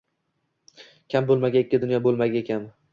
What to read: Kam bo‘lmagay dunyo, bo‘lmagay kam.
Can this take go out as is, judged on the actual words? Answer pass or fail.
fail